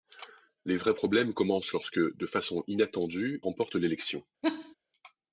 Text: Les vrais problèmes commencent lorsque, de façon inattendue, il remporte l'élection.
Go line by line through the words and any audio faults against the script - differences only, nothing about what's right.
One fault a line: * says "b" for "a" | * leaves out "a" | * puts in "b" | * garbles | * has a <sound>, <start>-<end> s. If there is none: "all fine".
* leaves out "il"
* has a laugh, 4.4-4.8 s